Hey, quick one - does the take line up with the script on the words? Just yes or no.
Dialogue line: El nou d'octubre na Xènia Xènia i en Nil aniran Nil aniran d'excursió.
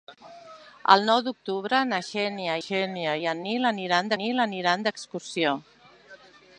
yes